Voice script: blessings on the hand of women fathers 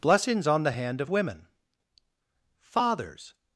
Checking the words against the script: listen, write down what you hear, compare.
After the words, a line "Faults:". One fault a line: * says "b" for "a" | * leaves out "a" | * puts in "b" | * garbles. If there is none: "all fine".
blessings on the hand of women fathers
Faults:
all fine